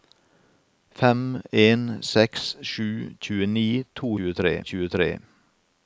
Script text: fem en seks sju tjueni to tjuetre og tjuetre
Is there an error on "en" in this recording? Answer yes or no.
no